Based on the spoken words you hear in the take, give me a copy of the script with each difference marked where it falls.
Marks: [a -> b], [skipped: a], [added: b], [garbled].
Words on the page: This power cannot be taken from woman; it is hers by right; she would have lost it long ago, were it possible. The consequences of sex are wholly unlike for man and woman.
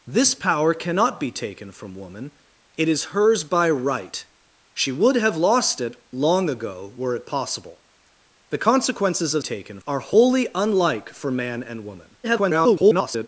This power cannot be taken from woman; it is hers by right; she would have lost it long ago, were it possible. The consequences of [sex -> taken] are wholly unlike for man and woman. [garbled]